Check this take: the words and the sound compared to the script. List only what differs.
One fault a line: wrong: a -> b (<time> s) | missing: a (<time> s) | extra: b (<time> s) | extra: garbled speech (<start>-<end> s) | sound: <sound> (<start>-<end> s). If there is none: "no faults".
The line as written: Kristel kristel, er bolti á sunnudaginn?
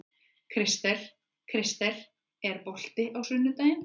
no faults